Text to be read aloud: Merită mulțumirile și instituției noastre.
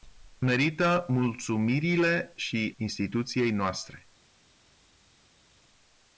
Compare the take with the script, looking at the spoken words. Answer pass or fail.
pass